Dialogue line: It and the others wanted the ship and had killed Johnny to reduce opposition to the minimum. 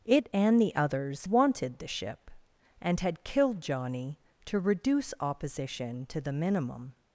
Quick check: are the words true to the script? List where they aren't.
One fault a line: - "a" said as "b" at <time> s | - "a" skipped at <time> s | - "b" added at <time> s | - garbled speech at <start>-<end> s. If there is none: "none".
none